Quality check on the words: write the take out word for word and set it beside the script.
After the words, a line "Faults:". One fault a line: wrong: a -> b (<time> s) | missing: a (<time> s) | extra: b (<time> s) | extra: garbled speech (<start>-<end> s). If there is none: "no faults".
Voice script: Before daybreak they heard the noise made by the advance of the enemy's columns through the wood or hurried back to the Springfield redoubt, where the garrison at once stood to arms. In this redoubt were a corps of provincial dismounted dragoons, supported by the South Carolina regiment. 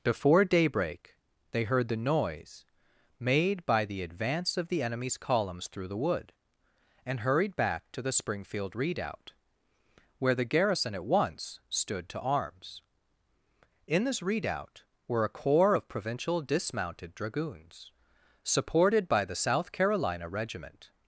Before daybreak they heard the noise made by the advance of the enemy's columns through the wood and hurried back to the Springfield redoubt, where the garrison at once stood to arms. In this redoubt were a corps of provincial dismounted dragoons, supported by the South Carolina regiment.
Faults:
wrong: or -> and (7.0 s)